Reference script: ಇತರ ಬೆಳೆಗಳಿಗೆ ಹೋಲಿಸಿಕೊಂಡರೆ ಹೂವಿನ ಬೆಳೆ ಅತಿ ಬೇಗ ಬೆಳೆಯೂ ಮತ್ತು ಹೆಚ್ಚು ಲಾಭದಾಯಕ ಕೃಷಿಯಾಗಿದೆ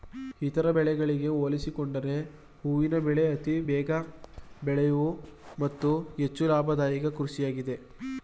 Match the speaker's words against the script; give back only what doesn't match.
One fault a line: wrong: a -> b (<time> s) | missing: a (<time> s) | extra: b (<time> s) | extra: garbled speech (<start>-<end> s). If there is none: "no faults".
no faults